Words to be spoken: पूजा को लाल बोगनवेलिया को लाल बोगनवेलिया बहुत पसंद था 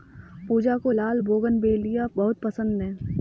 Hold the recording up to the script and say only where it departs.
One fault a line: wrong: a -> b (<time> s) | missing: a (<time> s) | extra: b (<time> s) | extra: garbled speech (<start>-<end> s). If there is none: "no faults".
missing: को लाल बोगनवेलिया (2.1 s)
wrong: था -> है (2.8 s)